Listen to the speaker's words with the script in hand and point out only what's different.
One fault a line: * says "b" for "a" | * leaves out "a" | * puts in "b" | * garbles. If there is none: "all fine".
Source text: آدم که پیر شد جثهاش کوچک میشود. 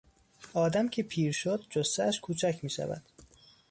all fine